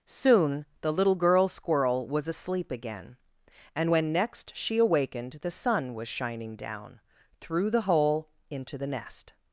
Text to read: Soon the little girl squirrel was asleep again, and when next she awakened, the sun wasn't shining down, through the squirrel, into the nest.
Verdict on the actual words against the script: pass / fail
fail